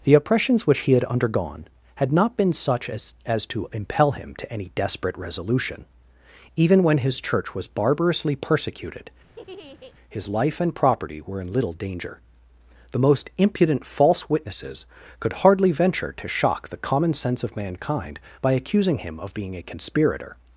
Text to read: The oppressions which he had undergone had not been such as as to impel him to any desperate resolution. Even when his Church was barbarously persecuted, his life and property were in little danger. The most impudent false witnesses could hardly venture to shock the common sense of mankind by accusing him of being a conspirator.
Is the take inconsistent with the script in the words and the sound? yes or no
yes